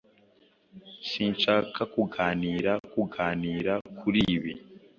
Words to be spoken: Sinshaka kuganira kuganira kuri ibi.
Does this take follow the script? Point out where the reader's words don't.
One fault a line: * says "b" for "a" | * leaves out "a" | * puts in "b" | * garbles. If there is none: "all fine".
all fine